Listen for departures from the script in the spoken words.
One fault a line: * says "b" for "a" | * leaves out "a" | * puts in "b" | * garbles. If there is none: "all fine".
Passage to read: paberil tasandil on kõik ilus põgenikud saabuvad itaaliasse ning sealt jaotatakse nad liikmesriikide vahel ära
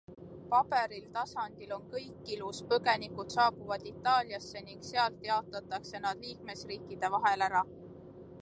all fine